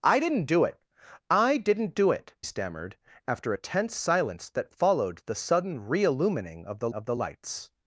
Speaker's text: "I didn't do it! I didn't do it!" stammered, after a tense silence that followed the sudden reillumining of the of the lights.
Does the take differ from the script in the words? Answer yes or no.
no